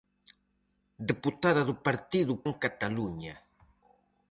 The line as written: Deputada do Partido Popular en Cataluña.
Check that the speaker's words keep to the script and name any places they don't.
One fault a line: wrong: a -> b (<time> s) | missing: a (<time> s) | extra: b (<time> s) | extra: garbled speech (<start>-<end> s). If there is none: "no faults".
missing: Popular (2.3 s)